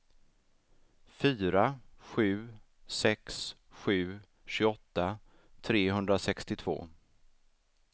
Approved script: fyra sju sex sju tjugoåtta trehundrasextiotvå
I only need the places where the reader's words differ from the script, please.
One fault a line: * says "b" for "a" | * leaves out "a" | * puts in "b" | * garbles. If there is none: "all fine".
all fine